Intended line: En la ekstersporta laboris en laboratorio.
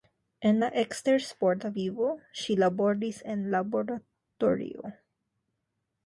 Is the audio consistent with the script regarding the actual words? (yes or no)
no